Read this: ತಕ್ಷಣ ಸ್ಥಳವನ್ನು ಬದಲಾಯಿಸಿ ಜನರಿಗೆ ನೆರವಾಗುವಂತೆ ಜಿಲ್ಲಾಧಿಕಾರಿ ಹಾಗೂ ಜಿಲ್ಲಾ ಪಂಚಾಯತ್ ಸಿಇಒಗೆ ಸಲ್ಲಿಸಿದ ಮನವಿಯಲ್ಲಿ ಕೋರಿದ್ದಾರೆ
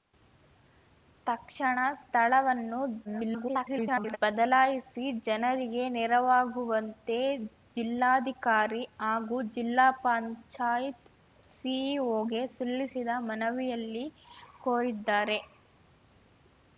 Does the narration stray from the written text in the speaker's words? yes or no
yes